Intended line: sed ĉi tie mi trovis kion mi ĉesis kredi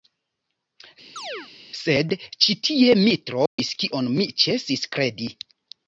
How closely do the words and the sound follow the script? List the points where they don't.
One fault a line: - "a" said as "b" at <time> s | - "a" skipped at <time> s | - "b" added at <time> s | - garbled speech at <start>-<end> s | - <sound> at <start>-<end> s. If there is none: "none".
- chirp at 1.2-1.5 s
- dropout at 3.5-3.6 s